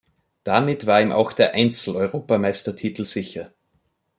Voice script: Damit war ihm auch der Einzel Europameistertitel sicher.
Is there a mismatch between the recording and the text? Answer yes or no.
no